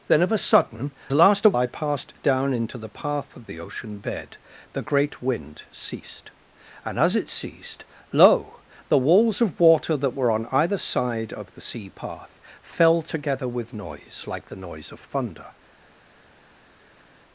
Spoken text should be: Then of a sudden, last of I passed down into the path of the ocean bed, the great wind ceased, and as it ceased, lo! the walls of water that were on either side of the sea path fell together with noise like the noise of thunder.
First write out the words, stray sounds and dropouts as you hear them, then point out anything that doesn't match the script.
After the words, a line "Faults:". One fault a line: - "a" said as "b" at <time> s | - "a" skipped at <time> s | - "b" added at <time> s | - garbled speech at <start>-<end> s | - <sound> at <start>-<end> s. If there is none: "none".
Then of a sudden, last of I passed down into the path of the ocean bed, the great wind ceased, and as it ceased, lo! the walls of water that were on either side of the sea path fell together with noise like the noise of thunder.
Faults:
none